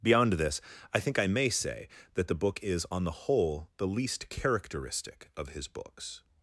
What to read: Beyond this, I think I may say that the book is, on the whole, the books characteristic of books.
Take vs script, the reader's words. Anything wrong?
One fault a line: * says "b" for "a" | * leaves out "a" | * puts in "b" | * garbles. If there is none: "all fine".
* says "least" for "books"
* puts in "his"